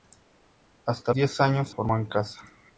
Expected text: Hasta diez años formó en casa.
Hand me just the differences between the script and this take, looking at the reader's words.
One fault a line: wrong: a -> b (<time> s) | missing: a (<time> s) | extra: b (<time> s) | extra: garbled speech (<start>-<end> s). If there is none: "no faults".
no faults